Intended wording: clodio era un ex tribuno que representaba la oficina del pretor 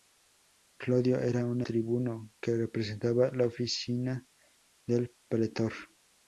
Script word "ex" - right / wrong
wrong